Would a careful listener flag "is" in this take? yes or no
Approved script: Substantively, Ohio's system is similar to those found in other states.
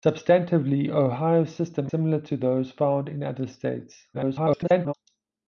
yes